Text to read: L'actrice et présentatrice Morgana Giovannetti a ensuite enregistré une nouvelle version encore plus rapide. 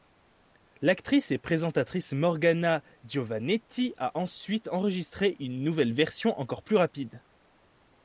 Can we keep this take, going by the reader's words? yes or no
yes